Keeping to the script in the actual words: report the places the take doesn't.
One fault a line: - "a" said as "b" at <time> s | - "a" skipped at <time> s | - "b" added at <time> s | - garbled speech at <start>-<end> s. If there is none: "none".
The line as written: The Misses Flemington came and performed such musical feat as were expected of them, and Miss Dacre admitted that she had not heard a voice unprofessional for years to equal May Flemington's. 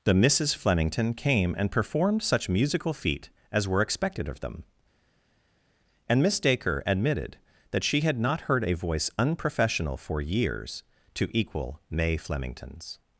none